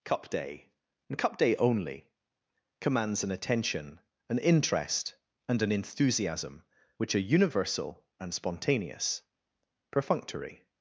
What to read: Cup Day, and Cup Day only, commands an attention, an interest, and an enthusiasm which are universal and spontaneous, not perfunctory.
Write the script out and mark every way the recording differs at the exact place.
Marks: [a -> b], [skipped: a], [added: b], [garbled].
Cup Day, and Cup Day only, commands an attention, an interest, and an enthusiasm which are universal and spontaneous, [skipped: not] perfunctory.